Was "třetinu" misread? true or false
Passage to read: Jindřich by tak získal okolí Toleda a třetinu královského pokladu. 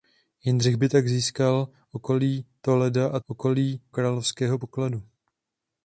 true